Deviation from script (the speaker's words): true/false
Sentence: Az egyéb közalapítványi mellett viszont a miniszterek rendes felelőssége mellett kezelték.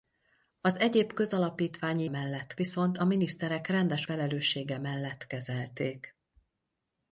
false